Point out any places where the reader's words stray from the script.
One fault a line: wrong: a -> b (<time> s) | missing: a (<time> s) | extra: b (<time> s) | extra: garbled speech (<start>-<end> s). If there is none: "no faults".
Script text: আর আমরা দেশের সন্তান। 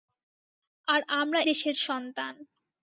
no faults